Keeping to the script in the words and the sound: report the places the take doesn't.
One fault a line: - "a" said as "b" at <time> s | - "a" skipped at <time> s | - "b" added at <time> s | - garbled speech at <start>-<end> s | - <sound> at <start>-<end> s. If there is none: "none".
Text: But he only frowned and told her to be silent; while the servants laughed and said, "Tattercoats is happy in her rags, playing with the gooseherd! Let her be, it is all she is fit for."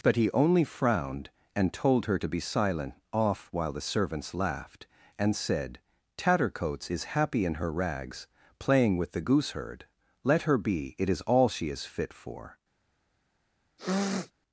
- "off" added at 3.1 s
- sniff at 13.8-14.3 s